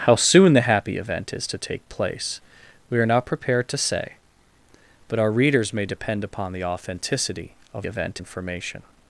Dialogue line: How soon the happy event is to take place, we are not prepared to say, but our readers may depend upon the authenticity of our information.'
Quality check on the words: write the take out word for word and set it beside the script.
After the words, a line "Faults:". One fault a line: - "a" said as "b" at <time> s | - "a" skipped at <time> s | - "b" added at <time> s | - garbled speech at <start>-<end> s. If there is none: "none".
How soon the happy event is to take place, we are not prepared to say, but our readers may depend upon the authenticity of event information.'
Faults:
- "our" said as "event" at 7.9 s